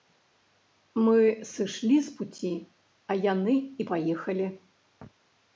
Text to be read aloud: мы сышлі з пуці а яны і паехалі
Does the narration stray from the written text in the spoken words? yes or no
no